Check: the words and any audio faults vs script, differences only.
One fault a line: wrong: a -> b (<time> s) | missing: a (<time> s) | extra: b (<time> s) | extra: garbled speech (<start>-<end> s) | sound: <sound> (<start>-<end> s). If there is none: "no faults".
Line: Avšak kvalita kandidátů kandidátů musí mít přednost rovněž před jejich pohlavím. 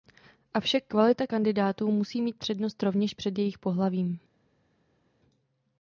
missing: kandidátů (1.9 s)